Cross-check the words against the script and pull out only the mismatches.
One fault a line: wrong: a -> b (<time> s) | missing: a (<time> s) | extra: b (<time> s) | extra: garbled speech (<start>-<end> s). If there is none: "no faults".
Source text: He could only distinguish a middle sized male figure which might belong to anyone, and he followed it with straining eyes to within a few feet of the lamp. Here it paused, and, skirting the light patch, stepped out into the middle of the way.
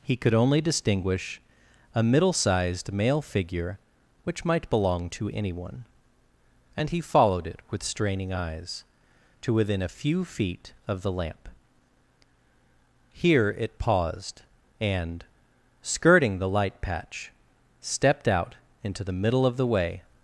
no faults